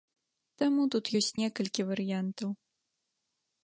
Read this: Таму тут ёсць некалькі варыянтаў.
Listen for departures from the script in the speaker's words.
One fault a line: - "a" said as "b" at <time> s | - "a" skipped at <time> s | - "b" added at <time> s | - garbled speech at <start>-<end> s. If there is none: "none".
none